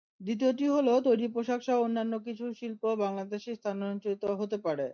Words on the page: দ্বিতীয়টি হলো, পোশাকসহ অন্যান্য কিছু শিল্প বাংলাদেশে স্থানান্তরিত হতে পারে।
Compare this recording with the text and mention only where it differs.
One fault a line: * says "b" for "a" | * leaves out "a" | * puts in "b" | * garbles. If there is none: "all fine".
* puts in "তৈরি"